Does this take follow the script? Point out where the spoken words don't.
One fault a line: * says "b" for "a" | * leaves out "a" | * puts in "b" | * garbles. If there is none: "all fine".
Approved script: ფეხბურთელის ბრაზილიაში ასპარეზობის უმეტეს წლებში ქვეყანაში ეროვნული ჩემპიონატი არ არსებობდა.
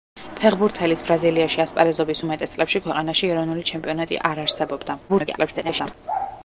* garbles